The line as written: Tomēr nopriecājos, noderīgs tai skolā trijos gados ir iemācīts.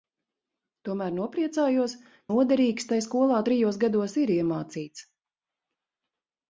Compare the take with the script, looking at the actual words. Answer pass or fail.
pass